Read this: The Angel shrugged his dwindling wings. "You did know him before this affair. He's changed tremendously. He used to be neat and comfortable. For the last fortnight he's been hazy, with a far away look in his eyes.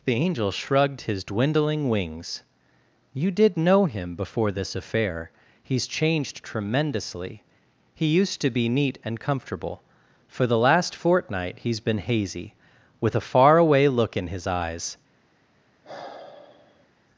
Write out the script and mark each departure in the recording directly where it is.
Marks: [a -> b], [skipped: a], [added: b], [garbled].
The Angel shrugged his dwindling wings. "You did know him before this affair. He's changed tremendously. He used to be neat and comfortable. For the last fortnight he's been hazy, with a far away look in his eyes.